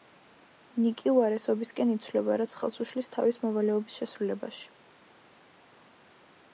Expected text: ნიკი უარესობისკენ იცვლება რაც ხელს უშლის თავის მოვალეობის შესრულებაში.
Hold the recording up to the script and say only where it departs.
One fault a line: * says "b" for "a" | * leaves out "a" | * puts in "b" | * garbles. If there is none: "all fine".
all fine